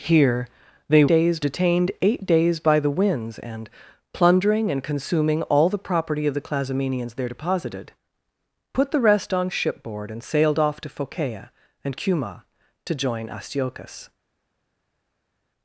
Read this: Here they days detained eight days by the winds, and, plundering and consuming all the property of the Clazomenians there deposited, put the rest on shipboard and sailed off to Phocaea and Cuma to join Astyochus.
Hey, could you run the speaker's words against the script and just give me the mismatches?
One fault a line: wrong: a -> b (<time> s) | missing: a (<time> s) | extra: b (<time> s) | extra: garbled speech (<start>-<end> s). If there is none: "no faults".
no faults